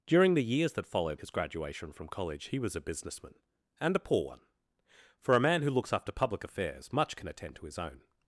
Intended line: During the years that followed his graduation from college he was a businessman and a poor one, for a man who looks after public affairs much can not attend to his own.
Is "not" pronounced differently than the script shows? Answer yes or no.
yes